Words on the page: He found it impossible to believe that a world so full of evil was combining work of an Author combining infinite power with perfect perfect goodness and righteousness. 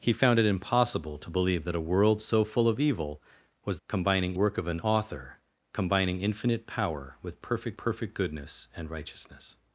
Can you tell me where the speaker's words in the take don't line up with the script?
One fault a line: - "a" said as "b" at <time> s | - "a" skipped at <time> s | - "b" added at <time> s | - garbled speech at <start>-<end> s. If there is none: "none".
none